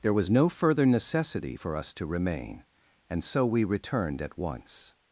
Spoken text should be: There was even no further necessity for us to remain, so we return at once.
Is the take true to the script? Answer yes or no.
no